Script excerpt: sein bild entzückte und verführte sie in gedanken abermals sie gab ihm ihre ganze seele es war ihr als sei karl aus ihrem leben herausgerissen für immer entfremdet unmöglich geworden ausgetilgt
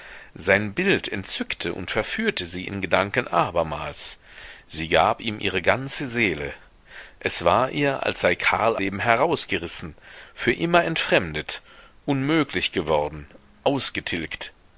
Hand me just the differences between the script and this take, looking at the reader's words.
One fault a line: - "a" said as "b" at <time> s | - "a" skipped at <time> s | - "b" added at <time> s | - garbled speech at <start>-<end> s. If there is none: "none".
- "aus ihrem" skipped at 8.8 s